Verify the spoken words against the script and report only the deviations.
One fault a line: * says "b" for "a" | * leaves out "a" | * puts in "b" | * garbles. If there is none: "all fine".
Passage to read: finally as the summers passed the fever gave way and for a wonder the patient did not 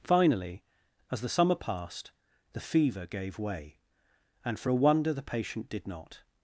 * says "summer" for "summers"